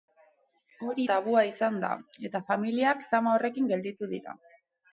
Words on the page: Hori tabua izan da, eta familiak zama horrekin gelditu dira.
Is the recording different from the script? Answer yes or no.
no